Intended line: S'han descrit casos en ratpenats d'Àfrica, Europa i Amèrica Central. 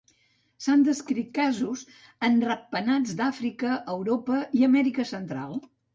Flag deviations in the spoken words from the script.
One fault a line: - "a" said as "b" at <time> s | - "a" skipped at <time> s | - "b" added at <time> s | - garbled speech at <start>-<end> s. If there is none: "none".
none